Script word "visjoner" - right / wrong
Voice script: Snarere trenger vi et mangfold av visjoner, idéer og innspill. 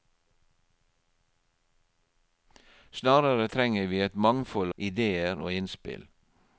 wrong